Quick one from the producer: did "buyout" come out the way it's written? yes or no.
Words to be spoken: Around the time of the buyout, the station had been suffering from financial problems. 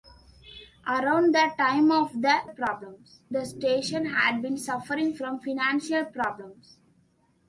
no